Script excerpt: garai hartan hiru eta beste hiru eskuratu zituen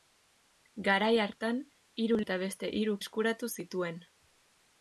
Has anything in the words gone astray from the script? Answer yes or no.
no